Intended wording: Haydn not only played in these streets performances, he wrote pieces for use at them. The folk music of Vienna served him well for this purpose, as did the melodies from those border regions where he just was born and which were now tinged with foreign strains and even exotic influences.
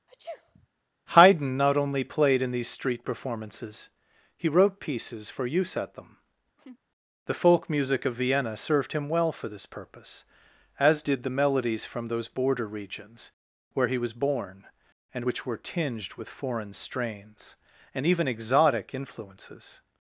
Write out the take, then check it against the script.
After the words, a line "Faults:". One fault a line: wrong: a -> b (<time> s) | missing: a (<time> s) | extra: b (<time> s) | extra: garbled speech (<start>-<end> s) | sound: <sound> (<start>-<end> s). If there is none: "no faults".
Haydn not only played in these street performances, he wrote pieces for use at them. The folk music of Vienna served him well for this purpose, as did the melodies from those border regions where he was born and which were tinged with foreign strains and even exotic influences.
Faults:
sound: sneeze (0.1-0.7 s)
wrong: streets -> street (2.7 s)
sound: laugh (6.6-6.8 s)
missing: just (14.0 s)
missing: now (15.6 s)